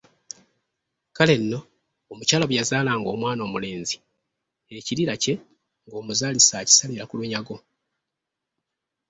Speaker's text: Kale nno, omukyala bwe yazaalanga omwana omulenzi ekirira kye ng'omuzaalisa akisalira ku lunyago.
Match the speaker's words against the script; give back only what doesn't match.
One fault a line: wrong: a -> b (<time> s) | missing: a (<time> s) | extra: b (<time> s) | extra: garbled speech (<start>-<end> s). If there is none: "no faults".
no faults